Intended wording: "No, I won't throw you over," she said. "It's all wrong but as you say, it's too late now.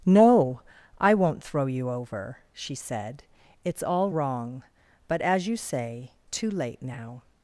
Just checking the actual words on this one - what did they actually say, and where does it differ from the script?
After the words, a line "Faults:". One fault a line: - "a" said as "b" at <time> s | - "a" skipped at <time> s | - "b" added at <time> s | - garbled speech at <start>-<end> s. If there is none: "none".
"No, I won't throw you over," she said. "It's all wrong but as you say, too late now.
Faults:
- "it's" skipped at 6.1 s